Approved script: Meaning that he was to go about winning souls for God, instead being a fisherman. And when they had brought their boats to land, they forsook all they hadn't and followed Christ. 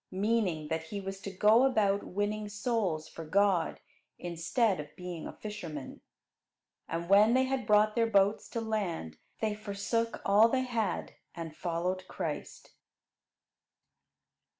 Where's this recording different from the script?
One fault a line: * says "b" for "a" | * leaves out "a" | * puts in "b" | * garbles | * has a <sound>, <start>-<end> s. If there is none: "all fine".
* puts in "of"
* says "had" for "hadn't"